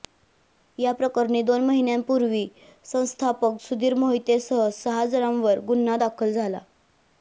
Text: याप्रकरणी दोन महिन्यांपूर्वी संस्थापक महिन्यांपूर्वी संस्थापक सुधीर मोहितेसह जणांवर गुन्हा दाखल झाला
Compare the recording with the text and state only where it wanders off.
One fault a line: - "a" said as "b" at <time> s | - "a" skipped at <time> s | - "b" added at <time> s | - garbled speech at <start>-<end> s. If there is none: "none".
- "महिन्यांपूर्वी संस्थापक" skipped at 3.6 s
- "सहा" added at 4.7 s